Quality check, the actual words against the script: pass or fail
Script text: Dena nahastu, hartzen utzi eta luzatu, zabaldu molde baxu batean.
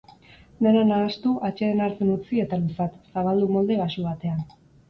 fail